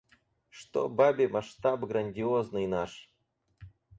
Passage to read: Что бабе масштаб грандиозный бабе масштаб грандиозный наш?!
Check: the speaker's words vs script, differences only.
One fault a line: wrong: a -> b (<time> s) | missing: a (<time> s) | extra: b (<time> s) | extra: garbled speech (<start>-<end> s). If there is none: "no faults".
missing: бабе масштаб грандиозный (2.6 s)